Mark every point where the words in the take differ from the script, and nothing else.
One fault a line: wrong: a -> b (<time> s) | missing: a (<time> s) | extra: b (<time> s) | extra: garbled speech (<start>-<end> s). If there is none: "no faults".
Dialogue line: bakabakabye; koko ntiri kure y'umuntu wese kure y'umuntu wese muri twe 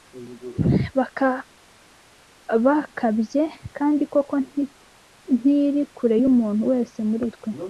extra: kandi (3.8 s)
missing: kure y'umuntu wese (7.0 s)